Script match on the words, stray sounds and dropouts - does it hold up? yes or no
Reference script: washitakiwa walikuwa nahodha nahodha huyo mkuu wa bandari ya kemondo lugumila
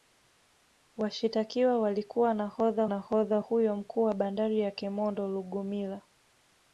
yes